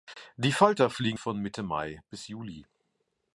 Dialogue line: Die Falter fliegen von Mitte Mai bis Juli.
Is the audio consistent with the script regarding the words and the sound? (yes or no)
yes